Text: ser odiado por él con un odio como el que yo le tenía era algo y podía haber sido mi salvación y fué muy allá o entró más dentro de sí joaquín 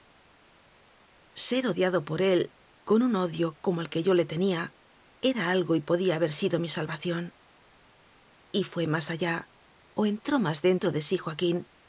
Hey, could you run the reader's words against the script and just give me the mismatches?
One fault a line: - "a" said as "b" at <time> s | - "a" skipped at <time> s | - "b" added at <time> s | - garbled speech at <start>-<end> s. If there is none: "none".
- "muy" said as "más" at 8.9 s